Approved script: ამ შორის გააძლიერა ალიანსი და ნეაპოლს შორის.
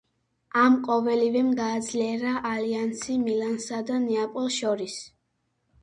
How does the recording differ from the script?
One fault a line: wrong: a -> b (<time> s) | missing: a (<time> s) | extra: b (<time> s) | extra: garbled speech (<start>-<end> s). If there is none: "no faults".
wrong: შორის -> ყოველივემ (0.9 s)
extra: მილანსა (3.3 s)